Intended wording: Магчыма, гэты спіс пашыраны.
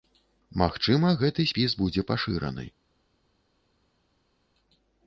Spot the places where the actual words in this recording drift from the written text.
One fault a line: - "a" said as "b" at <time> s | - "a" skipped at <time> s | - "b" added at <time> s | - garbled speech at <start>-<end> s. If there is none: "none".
- "будзе" added at 1.8 s